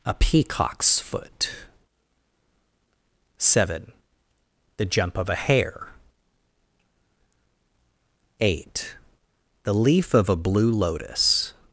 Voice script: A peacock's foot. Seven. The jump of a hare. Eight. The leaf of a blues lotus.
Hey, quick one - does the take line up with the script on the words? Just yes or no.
no